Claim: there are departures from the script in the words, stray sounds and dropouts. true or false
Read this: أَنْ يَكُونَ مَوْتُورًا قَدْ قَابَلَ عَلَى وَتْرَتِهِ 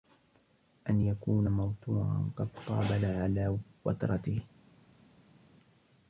false